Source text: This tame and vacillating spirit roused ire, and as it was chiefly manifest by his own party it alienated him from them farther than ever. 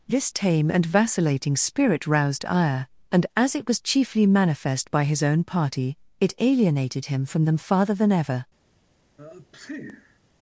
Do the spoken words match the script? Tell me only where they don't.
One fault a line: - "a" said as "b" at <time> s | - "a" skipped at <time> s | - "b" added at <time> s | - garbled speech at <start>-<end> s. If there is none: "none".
none